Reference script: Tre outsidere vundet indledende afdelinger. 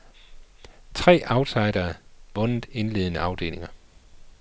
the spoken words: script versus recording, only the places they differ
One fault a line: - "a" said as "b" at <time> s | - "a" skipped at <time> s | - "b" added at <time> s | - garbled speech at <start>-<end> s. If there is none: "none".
none